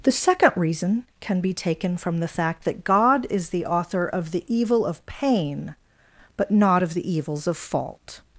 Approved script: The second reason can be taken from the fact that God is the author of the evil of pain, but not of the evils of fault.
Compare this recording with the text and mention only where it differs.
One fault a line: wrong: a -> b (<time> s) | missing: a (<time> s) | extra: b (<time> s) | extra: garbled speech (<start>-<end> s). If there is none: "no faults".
no faults